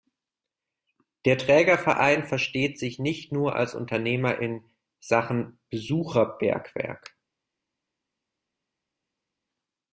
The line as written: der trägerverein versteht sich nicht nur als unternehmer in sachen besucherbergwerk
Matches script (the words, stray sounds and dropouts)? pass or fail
pass